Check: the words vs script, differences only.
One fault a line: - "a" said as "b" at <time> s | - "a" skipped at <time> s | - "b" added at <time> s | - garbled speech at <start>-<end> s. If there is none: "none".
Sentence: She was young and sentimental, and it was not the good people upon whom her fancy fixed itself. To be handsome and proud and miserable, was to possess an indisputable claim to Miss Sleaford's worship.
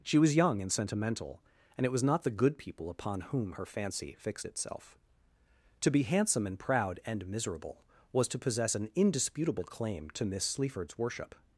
none